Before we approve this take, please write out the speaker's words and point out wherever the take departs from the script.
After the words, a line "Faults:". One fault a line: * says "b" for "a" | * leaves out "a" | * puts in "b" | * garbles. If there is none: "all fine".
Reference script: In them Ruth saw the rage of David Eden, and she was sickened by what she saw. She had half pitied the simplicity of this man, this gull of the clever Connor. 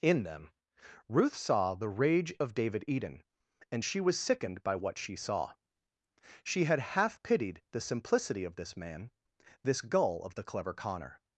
In them Ruth saw the rage of David Eden, and she was sickened by what she saw. She had half pitied the simplicity of this man, this gull of the clever Connor.
Faults:
all fine